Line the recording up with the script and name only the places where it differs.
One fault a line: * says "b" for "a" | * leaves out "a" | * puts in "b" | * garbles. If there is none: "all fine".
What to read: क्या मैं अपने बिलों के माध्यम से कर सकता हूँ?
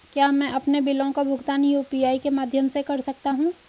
* puts in "का भुगतान यू.पी.आई"